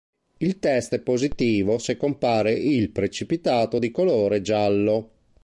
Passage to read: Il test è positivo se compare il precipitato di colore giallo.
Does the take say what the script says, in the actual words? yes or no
yes